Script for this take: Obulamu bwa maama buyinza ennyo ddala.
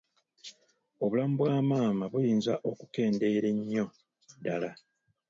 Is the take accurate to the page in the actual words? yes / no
no